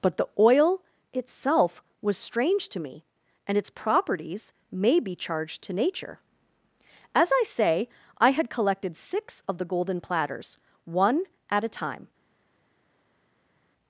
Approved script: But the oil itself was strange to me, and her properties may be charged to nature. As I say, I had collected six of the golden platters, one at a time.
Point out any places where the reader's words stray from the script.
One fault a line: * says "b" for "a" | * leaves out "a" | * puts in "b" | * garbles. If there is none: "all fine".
* says "its" for "her"